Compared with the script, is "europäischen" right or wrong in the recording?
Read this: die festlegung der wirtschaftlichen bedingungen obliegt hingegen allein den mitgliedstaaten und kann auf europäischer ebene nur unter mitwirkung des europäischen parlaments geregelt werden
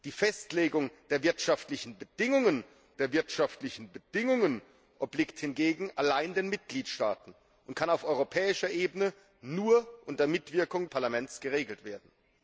wrong